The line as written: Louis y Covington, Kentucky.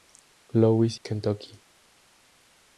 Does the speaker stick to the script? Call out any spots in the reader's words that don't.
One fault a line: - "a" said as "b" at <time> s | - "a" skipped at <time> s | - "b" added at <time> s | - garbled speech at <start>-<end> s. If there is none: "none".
- "y Covington" skipped at 1.0 s